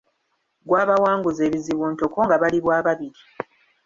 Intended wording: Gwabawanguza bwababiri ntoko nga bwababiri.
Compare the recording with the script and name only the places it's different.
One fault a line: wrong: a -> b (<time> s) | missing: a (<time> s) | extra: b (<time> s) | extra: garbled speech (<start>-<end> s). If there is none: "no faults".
wrong: bwababiri -> ebizibu (1.5 s)
extra: bali (2.4 s)